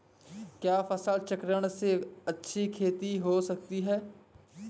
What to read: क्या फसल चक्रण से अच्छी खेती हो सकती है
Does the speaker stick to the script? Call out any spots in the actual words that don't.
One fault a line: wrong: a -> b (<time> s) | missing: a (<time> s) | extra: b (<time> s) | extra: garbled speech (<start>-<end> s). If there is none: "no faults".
no faults